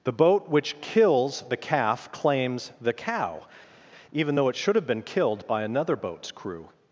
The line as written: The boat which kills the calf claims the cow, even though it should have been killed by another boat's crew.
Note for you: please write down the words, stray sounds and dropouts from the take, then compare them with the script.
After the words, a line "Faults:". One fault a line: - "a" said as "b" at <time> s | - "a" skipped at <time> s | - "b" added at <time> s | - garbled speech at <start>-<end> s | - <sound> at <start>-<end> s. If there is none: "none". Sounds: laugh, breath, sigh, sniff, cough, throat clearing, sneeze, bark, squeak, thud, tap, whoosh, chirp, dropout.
The boat which kills the calf claims the cow, even though it should have been killed by another boat's crew.
Faults:
none